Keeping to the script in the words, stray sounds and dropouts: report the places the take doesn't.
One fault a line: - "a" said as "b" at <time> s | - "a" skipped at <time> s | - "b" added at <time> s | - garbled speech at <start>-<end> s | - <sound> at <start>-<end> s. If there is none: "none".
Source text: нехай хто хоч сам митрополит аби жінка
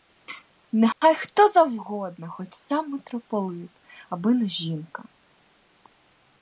- dropout at 0.9-1.0 s
- "завгодно" added at 1.5 s
- "не" added at 4.3 s